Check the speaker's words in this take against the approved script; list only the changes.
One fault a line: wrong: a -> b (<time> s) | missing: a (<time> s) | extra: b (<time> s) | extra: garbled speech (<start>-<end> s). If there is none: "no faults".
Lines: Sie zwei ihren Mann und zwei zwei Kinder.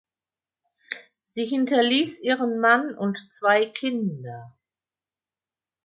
wrong: zwei -> hinterließ (1.4 s)
missing: zwei (3.7 s)